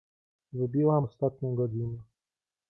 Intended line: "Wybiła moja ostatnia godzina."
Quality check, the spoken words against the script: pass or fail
fail